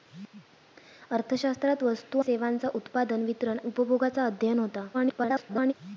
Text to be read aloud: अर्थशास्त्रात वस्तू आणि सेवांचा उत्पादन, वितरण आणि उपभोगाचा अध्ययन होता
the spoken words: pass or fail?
fail